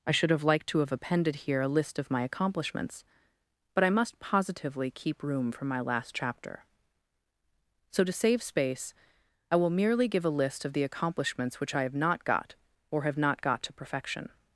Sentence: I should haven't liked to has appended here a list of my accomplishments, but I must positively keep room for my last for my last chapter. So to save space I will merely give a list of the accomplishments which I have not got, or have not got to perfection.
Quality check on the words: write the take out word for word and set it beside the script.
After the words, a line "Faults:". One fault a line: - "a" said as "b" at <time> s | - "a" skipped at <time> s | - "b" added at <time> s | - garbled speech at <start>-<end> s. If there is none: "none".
I should have liked to have appended here a list of my accomplishments, but I must positively keep room for my last chapter. So to save space I will merely give a list of the accomplishments which I have not got, or have not got to perfection.
Faults:
- "haven't" said as "have" at 0.3 s
- "has" said as "have" at 0.8 s
- "for my last" skipped at 6.2 s